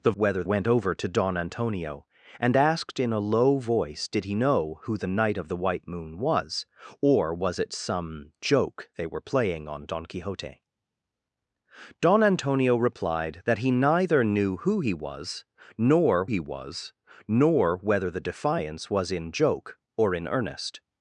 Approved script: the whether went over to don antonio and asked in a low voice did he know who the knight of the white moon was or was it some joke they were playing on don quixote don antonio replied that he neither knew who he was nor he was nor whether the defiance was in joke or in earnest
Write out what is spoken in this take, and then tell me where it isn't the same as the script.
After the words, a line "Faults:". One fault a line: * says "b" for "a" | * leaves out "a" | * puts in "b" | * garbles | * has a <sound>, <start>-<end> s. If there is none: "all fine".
the whether went over to don antonio and asked in a low voice did he know who the knight of the white moon was or was it some joke they were playing on don quixote don antonio replied that he neither knew who he was nor he was nor whether the defiance was in joke or in earnest
Faults:
all fine